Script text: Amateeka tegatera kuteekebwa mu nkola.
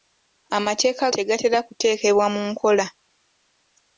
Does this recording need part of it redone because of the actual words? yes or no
no